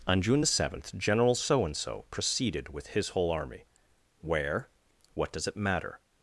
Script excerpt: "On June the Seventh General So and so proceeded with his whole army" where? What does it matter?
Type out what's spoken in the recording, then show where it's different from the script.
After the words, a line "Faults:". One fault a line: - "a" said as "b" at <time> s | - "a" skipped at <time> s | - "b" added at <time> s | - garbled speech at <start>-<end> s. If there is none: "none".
"On June the Seventh General So and so proceeded with his whole army" where? What does it matter?
Faults:
none